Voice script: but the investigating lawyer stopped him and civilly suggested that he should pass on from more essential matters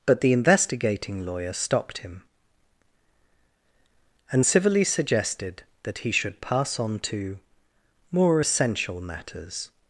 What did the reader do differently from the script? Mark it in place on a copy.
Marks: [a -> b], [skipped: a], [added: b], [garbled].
but the investigating lawyer stopped him and civilly suggested that he should pass on [from -> to] more essential matters